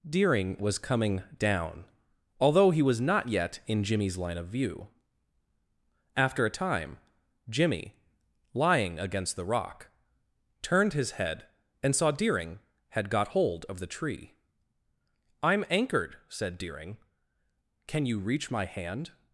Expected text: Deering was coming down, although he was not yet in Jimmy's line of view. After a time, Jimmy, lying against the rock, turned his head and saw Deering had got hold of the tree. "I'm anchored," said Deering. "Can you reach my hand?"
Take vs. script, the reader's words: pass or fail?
pass